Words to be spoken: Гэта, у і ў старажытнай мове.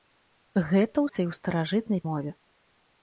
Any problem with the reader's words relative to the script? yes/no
no